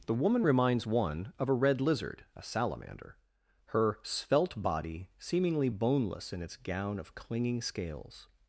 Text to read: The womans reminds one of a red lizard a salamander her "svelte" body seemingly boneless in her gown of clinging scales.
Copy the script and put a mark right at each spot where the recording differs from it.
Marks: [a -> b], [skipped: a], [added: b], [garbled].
The [womans -> woman] reminds one of a red lizard a salamander her "svelte" body seemingly boneless in [her -> its] gown of clinging scales.